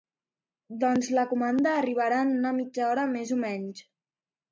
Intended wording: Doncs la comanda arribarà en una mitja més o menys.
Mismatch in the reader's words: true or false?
true